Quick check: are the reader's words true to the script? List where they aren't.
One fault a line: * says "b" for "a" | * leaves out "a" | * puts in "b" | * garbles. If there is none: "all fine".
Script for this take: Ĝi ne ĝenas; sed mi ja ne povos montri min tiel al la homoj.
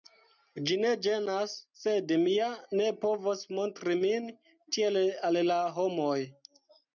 all fine